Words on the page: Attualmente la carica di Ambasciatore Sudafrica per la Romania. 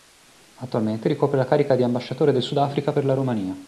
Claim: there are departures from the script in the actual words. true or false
true